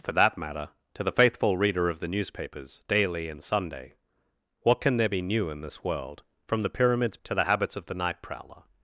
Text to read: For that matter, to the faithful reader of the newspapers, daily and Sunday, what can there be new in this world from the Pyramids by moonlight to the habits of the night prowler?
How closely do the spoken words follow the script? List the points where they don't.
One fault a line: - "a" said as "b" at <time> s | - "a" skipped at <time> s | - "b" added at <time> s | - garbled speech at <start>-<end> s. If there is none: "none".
- "by moonlight" skipped at 7.2 s